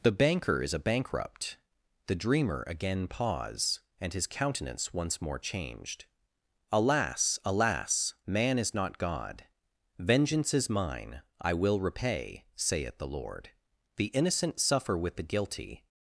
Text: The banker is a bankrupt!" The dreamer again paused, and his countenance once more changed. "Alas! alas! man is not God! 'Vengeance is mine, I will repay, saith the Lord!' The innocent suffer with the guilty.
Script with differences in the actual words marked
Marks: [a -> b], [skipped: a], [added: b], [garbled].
The banker is a bankrupt!" The dreamer again [paused, -> pause] and his countenance once more changed. "Alas! alas! man is not God! 'Vengeance is mine, I will repay, saith the Lord!' The innocent suffer with the guilty.